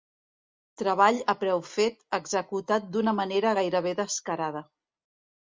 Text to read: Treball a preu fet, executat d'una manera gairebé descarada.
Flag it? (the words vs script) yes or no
no